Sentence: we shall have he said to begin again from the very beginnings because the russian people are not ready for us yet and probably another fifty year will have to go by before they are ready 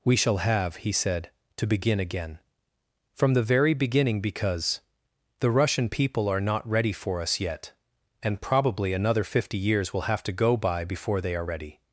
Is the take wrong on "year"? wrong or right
wrong